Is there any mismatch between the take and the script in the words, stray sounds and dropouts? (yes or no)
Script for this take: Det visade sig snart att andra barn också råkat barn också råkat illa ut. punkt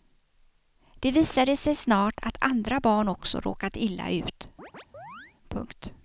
yes